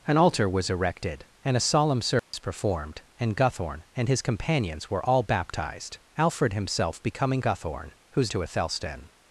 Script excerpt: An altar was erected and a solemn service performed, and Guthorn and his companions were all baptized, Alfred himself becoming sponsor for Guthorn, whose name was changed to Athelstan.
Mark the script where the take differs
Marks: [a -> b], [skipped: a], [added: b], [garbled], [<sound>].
An altar was erected and a solemn service [dropout] performed, and Guthorn and his companions were all baptized, Alfred himself becoming [skipped: sponsor for] Guthorn, whose [skipped: name was changed] to Athelstan.